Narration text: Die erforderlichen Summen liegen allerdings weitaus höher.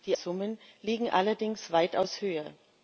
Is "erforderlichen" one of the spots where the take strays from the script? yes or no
yes